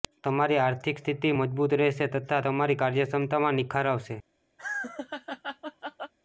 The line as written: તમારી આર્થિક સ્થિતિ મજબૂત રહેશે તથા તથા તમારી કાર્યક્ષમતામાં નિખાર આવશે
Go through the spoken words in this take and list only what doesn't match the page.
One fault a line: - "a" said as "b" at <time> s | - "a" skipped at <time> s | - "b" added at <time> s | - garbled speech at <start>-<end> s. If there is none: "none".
- "તથા" skipped at 2.4 s